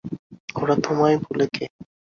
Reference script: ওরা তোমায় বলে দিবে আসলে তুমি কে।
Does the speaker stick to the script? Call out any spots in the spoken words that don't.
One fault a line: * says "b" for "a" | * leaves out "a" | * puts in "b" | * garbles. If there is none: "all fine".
* leaves out "দিবে আসলে তুমি"